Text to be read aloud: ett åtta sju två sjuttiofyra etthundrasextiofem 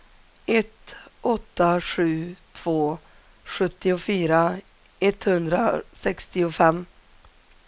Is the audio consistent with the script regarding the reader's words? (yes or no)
yes